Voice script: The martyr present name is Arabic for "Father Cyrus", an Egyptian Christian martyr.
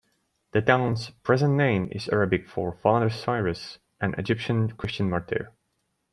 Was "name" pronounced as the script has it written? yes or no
yes